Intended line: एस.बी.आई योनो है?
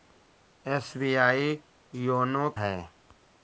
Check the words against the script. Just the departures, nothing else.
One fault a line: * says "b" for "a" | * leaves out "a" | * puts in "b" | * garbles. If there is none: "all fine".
all fine